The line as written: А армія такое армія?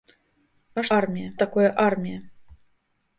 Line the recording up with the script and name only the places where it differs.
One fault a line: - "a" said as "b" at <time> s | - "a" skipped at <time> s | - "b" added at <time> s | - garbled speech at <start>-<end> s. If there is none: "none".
none